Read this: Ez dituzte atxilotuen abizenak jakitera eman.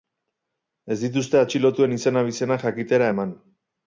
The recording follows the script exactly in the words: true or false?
false